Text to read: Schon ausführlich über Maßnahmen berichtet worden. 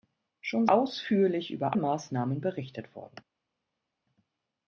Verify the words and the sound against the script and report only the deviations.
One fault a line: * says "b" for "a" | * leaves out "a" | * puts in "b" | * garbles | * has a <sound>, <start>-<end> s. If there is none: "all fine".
all fine